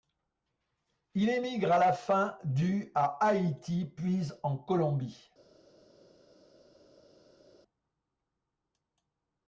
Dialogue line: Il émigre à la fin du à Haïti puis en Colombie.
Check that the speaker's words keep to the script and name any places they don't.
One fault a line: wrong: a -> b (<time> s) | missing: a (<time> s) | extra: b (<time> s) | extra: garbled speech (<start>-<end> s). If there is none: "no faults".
no faults